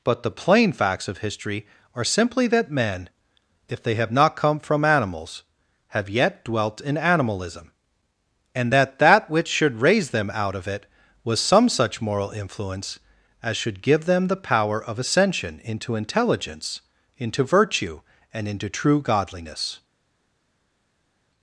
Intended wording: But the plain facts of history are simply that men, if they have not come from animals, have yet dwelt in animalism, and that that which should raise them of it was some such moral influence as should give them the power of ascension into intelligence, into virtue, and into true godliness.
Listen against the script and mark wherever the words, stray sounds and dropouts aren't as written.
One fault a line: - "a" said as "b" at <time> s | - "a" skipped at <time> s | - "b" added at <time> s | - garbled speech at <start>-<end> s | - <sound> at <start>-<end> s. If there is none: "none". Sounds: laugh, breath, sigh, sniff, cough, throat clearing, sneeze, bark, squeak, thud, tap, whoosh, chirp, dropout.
- "out" added at 10.3 s